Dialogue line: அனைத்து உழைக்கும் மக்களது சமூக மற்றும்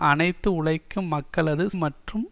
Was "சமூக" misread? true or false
true